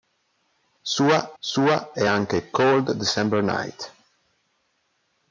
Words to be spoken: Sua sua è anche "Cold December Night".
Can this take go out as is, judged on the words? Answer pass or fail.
pass